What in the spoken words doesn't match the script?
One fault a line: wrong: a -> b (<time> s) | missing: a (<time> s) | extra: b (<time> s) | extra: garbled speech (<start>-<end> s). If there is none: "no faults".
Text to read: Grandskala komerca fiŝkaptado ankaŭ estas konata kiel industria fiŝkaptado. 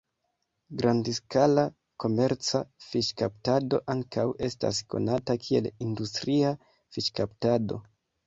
no faults